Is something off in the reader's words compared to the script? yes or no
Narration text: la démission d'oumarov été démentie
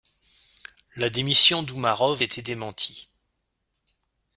no